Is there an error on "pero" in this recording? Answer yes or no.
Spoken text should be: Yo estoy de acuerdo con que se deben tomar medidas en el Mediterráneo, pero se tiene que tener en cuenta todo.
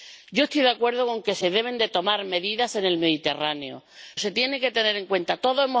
yes